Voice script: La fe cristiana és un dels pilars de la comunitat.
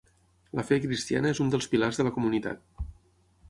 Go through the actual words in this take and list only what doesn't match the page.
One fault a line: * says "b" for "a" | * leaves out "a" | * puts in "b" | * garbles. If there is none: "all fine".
all fine